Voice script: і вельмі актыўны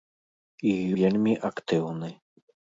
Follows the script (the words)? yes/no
yes